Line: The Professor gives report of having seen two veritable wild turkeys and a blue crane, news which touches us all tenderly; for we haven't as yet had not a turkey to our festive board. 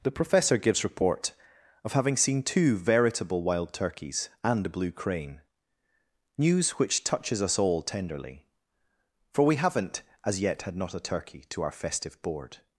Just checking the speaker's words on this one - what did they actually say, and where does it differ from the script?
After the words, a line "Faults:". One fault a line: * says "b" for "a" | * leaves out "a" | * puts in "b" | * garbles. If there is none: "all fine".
The Professor gives report of having seen two veritable wild turkeys and a blue crane, news which touches us all tenderly; for we haven't as yet had not a turkey to our festive board.
Faults:
all fine